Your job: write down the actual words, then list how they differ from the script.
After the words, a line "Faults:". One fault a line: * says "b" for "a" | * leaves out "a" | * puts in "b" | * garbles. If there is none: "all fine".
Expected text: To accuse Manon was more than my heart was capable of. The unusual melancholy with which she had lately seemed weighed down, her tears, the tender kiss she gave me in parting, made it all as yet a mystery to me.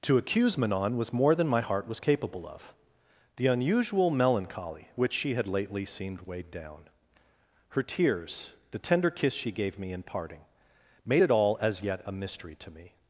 To accuse Manon was more than my heart was capable of. The unusual melancholy which she had lately seemed weighed down, her tears, the tender kiss she gave me in parting, made it all as yet a mystery to me.
Faults:
* leaves out "with"